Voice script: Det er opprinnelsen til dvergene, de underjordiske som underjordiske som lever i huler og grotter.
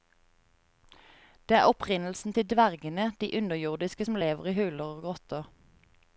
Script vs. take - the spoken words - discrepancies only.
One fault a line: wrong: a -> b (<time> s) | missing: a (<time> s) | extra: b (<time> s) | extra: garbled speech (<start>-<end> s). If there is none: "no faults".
missing: underjordiske som (4.2 s)